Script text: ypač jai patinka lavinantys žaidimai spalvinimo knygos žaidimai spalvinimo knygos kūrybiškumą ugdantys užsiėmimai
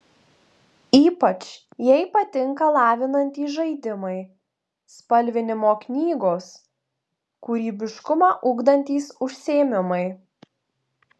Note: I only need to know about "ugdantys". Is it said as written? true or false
true